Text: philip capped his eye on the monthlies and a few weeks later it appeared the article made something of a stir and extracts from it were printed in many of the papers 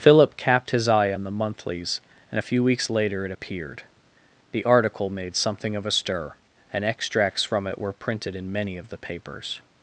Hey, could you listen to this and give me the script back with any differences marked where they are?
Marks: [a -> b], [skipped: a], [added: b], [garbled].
philip capped his eye on the monthlies and a few weeks later it appeared the article made something of a stir and extracts from it were printed in many of the papers